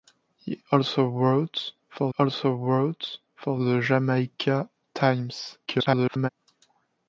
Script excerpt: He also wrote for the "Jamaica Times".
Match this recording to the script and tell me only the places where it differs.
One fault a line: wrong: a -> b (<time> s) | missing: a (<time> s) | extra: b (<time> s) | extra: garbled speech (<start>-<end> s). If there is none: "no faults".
extra: also wrote for (2.2 s)
extra: garbled speech (5.7-6.3 s)